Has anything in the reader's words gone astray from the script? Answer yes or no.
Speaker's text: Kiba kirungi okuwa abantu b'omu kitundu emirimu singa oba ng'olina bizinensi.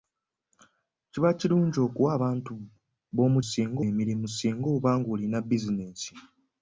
yes